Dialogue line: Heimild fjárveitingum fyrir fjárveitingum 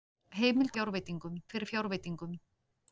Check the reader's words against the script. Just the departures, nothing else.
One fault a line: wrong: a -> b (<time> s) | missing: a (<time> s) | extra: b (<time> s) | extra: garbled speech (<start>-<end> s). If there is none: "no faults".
no faults